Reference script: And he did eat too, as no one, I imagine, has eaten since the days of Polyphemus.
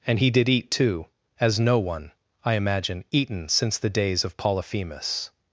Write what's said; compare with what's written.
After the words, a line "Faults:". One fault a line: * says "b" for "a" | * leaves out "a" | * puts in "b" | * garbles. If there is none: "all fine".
And he did eat too, as no one, I imagine, eaten since the days of Polyphemus.
Faults:
* leaves out "has"